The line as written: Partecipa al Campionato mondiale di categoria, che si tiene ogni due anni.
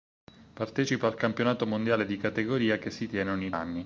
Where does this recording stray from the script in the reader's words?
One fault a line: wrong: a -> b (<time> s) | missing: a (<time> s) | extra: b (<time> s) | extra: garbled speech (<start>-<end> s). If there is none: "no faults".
missing: due (3.5 s)